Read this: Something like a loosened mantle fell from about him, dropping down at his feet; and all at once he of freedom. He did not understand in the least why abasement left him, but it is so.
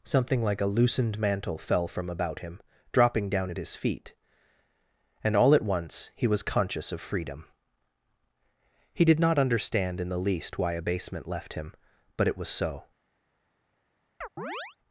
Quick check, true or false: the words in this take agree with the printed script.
false